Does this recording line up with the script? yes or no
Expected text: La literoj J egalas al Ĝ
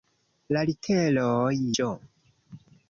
no